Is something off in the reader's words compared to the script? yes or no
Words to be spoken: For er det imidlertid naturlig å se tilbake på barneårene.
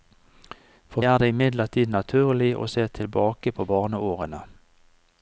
no